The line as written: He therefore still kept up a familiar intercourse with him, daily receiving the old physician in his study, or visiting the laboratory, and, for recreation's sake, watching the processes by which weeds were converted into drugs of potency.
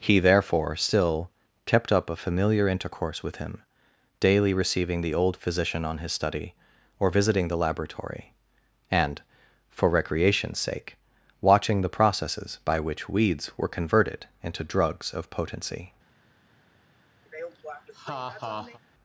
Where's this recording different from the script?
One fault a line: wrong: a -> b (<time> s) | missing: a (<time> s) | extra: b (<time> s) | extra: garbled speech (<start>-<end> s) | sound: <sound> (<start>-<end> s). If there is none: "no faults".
wrong: in -> on (5.8 s)
sound: laugh (17.3-18.8 s)